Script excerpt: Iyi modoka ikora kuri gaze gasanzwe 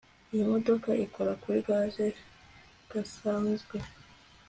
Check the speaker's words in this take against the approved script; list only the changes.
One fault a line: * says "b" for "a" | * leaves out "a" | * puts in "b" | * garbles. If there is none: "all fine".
all fine